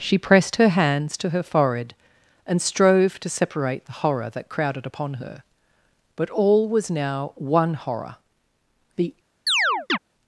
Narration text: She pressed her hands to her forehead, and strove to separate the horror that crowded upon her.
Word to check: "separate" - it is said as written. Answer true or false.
true